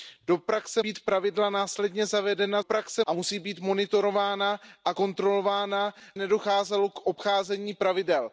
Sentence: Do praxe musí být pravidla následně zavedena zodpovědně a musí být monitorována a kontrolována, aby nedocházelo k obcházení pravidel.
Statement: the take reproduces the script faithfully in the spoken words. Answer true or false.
false